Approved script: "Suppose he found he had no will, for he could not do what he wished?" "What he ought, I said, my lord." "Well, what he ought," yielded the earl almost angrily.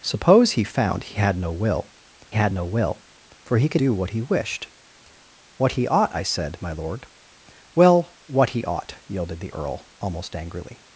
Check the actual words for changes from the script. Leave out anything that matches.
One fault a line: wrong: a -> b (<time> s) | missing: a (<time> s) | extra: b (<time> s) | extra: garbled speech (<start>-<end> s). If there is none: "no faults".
extra: had no will (2.3 s)
missing: not (3.8 s)